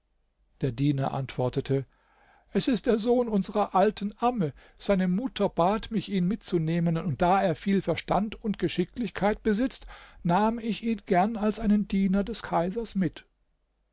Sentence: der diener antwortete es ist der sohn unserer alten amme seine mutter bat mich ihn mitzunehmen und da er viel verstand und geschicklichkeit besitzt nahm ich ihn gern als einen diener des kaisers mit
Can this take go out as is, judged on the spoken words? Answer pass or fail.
pass